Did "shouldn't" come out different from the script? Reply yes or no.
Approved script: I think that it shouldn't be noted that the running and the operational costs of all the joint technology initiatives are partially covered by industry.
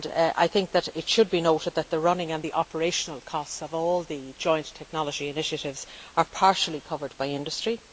yes